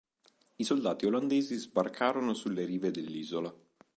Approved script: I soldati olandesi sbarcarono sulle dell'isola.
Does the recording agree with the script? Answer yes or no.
no